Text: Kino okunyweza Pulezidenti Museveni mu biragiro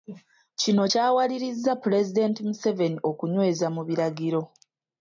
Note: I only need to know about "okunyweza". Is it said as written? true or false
false